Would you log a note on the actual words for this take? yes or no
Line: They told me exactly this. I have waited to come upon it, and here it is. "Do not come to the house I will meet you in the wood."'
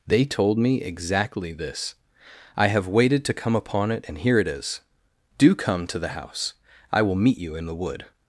yes